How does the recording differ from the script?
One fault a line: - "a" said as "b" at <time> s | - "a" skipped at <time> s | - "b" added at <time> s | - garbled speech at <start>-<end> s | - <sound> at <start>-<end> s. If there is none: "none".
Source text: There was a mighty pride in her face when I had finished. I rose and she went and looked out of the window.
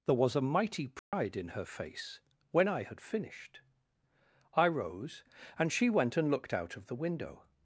- dropout at 1.0-1.1 s